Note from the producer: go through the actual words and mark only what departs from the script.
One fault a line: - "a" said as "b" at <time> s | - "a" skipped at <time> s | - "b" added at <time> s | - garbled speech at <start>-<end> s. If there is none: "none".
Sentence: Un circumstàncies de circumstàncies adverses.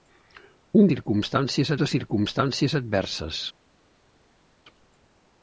none